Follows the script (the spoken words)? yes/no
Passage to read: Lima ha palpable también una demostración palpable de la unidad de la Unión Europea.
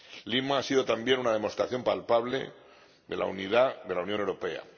no